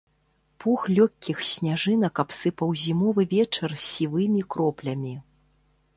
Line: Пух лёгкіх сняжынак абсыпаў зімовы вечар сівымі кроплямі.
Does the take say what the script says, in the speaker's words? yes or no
yes